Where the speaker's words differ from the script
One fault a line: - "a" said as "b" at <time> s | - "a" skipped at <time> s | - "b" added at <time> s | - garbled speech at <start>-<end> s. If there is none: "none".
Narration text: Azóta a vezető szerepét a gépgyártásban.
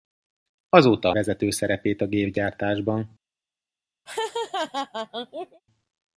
none